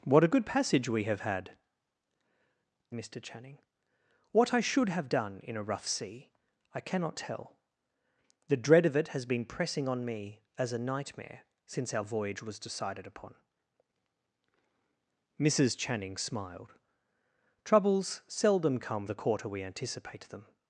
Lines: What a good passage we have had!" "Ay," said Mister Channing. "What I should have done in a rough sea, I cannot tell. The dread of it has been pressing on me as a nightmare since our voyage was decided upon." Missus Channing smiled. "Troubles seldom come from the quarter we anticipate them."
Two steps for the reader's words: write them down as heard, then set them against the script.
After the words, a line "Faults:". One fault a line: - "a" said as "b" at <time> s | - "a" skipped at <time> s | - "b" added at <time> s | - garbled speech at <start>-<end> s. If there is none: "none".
What a good passage we have had!" "Mister Channing. "What I should have done in a rough sea, I cannot tell. The dread of it has been pressing on me as a nightmare since our voyage was decided upon." Missus Channing smiled. "Troubles seldom come the quarter we anticipate them."
Faults:
- "Ay said" skipped at 1.6 s
- "from" skipped at 19.1 s